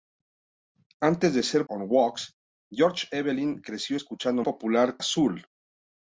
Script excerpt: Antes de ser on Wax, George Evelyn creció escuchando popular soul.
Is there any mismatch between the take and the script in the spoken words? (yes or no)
no